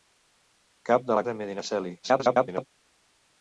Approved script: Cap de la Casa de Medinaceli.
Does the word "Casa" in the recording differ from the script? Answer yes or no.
yes